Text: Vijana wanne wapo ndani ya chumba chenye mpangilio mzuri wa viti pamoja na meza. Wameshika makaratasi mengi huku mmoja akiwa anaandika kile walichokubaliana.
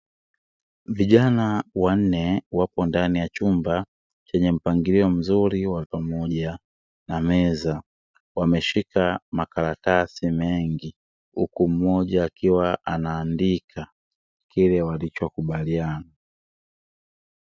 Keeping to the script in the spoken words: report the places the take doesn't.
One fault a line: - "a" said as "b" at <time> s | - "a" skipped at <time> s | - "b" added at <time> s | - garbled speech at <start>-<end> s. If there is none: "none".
- "viti" skipped at 5.8 s